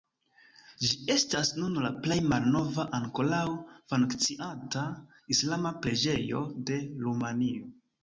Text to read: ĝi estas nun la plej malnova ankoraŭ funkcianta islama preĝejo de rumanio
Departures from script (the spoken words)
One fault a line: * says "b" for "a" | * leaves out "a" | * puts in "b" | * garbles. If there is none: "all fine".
all fine